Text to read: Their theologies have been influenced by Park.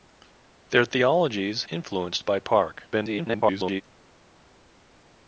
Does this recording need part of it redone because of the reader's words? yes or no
yes